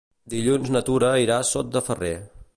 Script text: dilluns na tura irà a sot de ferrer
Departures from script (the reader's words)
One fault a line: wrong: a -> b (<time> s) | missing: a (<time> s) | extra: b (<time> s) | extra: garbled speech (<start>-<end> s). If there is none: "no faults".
no faults